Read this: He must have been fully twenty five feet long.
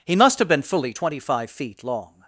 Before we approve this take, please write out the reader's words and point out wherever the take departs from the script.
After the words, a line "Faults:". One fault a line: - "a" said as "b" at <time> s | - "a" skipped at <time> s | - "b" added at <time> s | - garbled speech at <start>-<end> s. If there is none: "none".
He must have been fully twenty five feet long.
Faults:
none